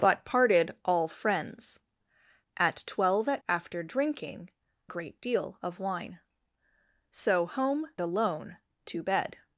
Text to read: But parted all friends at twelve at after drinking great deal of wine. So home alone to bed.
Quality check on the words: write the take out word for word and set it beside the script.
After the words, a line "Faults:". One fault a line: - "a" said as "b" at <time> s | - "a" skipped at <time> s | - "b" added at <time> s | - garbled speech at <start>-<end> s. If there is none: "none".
But parted all friends at twelve at after drinking great deal of wine. So home alone to bed.
Faults:
none